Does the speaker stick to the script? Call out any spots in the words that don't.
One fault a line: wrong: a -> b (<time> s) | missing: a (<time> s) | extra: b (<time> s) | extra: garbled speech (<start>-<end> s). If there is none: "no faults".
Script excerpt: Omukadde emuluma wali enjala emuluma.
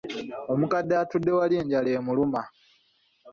wrong: emuluma -> atudde (1.0 s)